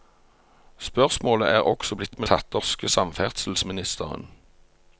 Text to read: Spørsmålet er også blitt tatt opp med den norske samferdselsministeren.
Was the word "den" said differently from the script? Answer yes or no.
yes